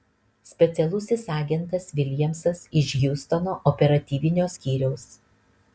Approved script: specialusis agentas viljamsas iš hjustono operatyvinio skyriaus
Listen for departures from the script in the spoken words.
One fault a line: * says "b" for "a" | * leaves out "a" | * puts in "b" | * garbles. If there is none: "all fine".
all fine